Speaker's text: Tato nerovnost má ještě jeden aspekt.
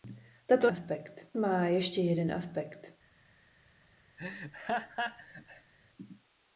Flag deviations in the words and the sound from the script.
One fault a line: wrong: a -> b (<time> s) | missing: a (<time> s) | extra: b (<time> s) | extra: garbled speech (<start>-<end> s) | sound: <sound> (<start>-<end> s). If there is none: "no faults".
wrong: nerovnost -> aspekt (0.6 s)
sound: laugh (4.2-5.7 s)